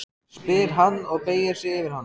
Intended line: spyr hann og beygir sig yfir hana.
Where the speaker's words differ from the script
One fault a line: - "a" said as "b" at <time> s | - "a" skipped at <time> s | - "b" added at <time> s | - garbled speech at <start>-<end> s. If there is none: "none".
none